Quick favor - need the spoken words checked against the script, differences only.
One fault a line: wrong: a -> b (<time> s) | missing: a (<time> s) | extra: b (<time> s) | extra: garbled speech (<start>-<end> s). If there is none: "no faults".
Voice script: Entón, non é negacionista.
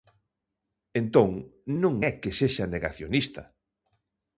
extra: que sexa (2.2 s)